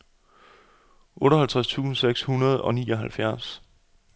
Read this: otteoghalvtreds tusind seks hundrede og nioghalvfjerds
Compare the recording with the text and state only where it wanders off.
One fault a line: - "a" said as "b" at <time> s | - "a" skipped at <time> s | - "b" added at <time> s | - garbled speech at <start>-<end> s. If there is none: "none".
none